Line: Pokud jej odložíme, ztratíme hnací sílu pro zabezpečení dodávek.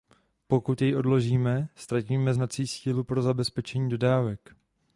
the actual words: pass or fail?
pass